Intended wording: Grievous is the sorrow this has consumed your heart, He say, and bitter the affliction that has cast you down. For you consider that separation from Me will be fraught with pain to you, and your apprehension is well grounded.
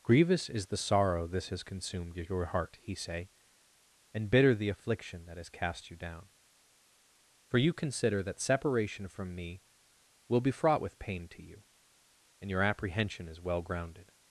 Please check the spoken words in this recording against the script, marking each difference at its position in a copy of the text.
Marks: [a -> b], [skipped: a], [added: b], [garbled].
Grievous is the sorrow this has consumed your heart, He say, and bitter the affliction that has cast you down. For you consider that separation from Me will be fraught with pain to you, and your apprehension is well grounded.